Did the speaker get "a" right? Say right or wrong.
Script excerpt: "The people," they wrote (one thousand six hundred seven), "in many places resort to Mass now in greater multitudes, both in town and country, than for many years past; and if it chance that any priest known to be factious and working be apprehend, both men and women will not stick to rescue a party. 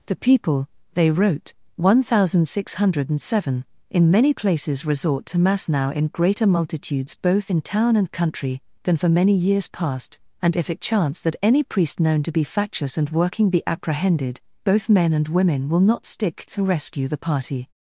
wrong